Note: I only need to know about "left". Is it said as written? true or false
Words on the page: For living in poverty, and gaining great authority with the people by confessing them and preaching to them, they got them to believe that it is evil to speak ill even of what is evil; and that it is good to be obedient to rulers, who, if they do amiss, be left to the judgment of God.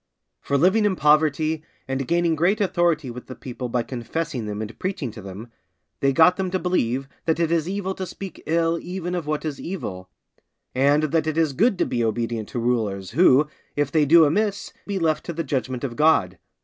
true